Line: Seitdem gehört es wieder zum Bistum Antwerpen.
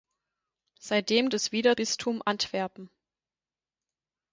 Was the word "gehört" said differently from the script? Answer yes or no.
yes